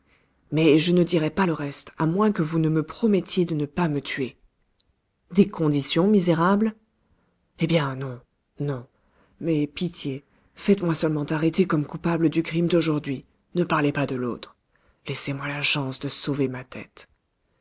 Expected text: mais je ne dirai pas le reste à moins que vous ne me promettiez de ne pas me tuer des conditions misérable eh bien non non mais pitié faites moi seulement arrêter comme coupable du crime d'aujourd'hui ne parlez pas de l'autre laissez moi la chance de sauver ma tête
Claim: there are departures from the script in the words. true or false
false